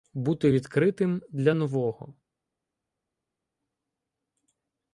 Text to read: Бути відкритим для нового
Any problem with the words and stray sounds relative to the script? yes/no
no